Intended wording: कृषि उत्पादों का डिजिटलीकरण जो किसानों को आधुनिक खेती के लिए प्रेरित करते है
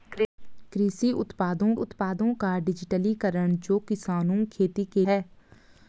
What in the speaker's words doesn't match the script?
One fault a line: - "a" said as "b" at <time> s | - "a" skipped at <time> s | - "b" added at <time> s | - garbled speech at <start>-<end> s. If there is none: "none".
- "उत्पादों" added at 1.7 s
- "को आधुनिक" skipped at 4.4 s
- "लिए प्रेरित करते" skipped at 5.1 s